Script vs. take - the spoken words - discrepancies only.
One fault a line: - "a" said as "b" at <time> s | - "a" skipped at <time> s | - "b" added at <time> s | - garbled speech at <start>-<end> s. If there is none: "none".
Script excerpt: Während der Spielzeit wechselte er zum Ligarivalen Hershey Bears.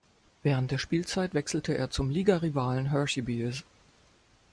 none